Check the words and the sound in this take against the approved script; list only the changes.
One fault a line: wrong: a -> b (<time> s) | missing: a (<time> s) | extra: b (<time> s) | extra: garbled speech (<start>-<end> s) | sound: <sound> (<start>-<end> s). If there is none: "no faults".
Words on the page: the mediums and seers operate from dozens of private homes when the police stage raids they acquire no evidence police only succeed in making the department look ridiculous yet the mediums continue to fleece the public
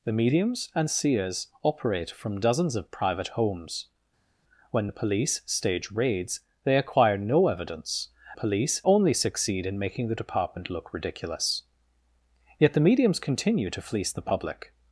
no faults